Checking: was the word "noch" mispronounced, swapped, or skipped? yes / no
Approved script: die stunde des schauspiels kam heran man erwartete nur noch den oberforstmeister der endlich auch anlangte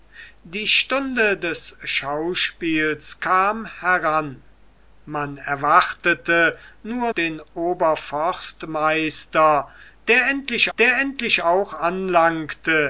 yes